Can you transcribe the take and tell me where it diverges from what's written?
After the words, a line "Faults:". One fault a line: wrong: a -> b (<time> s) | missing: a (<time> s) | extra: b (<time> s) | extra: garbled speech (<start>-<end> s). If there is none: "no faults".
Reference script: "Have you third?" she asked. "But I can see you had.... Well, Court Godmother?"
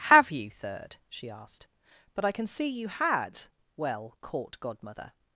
"Have you third?" she asked. "But I can see you had.... Well, Court Godmother?"
Faults:
no faults